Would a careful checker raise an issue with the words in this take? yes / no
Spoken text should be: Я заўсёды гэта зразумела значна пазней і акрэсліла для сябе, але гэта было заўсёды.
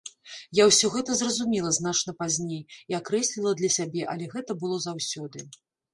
yes